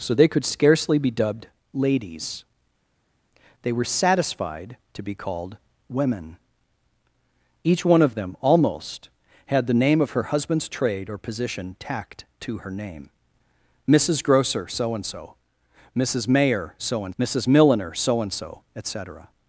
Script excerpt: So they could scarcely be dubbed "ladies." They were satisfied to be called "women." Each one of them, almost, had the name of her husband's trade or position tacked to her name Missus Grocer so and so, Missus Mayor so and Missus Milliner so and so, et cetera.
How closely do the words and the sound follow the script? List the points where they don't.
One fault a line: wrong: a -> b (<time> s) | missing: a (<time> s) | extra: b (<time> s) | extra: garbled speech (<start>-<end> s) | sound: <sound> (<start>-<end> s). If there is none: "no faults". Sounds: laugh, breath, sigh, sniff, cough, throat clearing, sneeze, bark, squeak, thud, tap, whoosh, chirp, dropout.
no faults